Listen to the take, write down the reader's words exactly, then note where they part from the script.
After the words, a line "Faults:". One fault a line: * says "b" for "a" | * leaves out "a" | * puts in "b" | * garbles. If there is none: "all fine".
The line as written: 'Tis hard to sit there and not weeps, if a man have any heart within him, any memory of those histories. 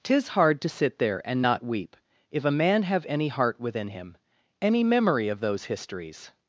'Tis hard to sit there and not weep, if a man have any heart within him, any memory of those histories.
Faults:
* says "weep" for "weeps"